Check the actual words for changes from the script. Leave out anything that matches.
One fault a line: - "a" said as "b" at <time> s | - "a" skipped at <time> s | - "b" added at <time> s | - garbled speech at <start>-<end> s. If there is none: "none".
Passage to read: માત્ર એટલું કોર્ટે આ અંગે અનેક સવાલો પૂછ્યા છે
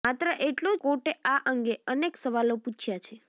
none